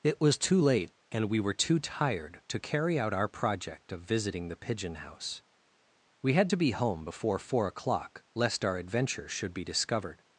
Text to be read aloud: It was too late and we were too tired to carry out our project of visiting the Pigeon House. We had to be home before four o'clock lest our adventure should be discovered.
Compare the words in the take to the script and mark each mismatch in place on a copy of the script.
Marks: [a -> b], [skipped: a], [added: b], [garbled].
It was too late and we were too tired to carry out our project of visiting the Pigeon House. We had to be home before four o'clock lest our adventure should be discovered.